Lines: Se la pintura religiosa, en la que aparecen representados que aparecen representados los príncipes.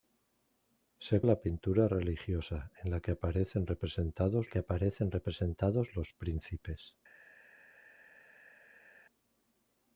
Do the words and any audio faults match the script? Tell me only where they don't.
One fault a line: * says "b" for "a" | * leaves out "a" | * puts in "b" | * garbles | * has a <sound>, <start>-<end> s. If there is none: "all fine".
all fine